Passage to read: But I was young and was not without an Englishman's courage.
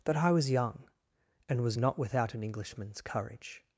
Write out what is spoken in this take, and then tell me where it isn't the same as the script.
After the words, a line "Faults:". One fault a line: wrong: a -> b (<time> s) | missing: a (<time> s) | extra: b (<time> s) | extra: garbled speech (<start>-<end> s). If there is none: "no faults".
That I was young and was not without an Englishman's courage.
Faults:
wrong: But -> That (0.1 s)